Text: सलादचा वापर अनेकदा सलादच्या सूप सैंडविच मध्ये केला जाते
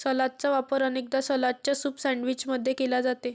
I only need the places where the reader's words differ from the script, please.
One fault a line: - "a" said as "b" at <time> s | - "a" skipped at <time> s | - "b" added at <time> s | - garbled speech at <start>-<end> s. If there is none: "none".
none